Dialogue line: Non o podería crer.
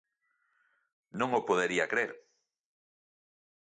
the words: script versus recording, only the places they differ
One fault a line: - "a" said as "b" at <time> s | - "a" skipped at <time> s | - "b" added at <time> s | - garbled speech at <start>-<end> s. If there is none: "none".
none